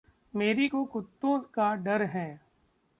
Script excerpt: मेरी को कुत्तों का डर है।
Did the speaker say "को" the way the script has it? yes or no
yes